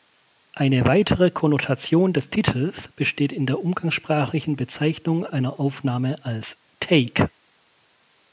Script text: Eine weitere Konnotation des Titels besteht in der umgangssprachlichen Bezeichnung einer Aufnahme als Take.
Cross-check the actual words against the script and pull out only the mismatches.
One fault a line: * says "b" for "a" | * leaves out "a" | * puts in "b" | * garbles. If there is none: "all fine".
all fine